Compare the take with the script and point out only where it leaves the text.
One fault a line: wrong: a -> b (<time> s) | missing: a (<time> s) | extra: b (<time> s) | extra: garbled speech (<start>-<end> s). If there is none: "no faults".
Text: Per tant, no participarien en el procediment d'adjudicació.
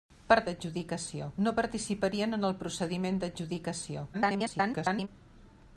wrong: tant -> d'adjudicació (0.5 s)
extra: garbled speech (4.1-5.1 s)